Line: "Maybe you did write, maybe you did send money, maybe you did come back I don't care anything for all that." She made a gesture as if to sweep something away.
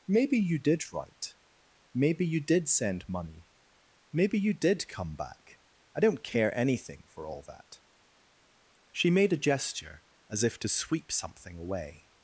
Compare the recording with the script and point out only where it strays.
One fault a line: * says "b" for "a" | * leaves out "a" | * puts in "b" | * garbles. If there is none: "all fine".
all fine